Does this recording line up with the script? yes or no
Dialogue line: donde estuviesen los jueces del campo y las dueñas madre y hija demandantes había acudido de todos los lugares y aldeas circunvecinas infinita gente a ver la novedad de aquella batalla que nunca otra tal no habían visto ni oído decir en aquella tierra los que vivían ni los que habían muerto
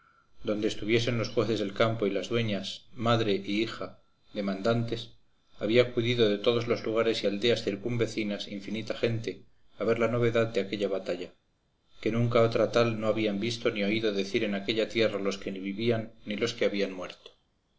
yes